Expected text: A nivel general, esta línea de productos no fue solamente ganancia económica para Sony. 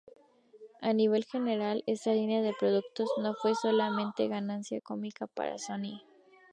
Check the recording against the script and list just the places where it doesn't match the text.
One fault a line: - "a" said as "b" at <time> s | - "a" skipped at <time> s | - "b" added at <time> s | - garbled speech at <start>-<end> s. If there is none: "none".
none